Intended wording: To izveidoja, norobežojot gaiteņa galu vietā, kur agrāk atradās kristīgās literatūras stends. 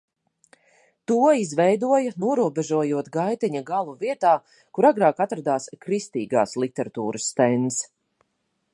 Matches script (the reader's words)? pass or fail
pass